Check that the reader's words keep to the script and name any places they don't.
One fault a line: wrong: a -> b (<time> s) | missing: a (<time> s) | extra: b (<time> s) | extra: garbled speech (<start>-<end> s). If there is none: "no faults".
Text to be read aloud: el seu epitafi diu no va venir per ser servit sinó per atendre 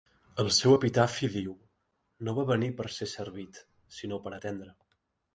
no faults